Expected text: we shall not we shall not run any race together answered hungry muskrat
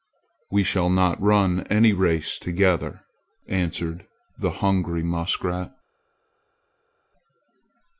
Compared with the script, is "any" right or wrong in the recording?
right